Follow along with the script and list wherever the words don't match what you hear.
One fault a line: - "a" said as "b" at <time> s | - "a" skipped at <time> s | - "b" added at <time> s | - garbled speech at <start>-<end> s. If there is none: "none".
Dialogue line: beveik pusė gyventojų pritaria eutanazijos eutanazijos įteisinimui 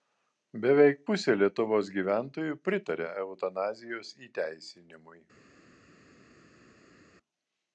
- "lietuvos" added at 1.4 s
- "eutanazijos" skipped at 4.1 s